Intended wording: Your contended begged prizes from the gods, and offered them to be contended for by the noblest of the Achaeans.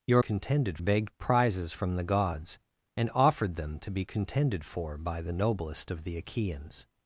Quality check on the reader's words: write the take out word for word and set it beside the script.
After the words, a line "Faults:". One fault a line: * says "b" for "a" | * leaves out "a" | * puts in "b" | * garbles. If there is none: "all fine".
Your contended begged prizes from the gods, and offered them to be contended for by the noblest of the Achaeans.
Faults:
all fine